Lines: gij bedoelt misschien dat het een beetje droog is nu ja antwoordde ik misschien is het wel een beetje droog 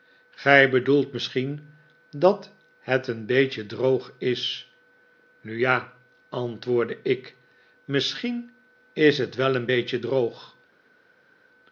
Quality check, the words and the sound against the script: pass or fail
pass